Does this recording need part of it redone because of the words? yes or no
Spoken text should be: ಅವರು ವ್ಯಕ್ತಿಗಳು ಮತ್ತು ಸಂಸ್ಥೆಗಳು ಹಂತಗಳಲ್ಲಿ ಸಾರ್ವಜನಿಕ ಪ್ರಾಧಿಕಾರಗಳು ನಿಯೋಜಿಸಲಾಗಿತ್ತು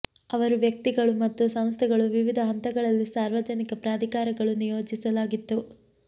yes